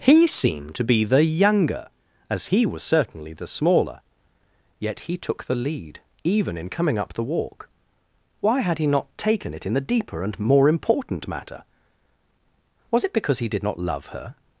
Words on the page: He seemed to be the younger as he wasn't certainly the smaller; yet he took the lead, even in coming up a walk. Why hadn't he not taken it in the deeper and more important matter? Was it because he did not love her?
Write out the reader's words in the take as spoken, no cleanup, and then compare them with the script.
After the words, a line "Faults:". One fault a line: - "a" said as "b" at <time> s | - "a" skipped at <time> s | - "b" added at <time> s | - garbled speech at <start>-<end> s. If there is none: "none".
He seemed to be the younger as he was certainly the smaller; yet he took the lead, even in coming up the walk. Why had he not taken it in the deeper and more important matter? Was it because he did not love her?
Faults:
- "wasn't" said as "was" at 2.6 s
- "a" said as "the" at 7.1 s
- "hadn't" said as "had" at 8.6 s